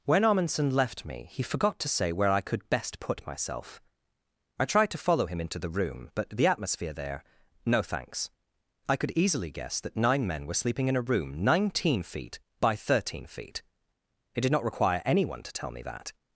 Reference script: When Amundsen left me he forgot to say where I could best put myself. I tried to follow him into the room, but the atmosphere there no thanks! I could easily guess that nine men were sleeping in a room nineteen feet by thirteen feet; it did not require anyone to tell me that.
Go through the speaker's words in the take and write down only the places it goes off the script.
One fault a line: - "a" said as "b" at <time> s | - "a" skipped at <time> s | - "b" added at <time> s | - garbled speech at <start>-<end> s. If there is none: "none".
none